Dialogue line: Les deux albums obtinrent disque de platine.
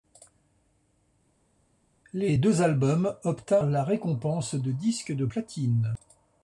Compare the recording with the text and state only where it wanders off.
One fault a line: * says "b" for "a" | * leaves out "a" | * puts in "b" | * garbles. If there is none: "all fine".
* puts in "la récompense de"